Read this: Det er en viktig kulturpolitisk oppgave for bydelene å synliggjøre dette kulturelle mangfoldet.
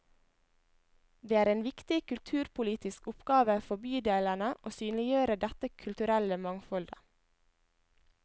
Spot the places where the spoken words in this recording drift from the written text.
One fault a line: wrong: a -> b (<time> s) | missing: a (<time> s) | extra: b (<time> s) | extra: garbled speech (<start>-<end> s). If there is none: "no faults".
no faults